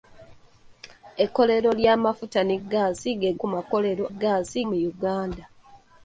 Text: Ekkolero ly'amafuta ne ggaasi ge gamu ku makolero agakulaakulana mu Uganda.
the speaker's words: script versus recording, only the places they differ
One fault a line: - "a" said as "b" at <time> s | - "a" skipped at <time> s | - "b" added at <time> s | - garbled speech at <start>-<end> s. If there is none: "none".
- "gamu" skipped at 3.3 s
- "agakulaakulana" said as "ggaasi" at 4.1 s